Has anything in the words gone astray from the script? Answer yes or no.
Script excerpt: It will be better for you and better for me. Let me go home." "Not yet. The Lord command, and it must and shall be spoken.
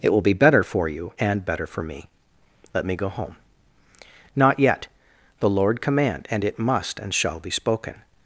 no